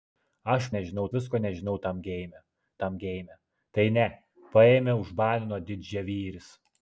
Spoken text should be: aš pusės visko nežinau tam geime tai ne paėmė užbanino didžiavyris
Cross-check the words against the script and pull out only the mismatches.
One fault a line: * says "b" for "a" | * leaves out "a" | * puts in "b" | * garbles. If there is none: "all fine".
* says "nežinau" for "pusės"
* puts in "tam geime"